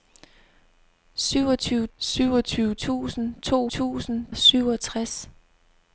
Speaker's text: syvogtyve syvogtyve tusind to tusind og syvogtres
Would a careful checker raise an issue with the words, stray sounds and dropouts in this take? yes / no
no